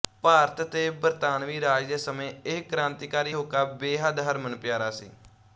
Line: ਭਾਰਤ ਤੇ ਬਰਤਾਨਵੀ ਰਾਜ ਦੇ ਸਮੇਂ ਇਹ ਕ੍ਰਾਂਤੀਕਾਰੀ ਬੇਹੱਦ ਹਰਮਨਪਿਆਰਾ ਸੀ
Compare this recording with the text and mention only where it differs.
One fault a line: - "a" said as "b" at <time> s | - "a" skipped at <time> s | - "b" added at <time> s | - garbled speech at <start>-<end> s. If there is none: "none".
- "ਹੋਕਾ" added at 3.3 s